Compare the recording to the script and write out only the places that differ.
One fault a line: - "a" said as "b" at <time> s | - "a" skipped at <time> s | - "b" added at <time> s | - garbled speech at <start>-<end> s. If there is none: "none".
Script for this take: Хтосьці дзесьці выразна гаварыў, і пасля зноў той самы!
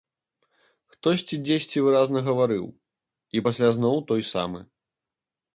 none